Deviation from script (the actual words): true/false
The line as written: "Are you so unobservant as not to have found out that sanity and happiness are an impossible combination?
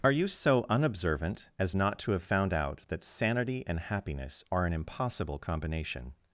false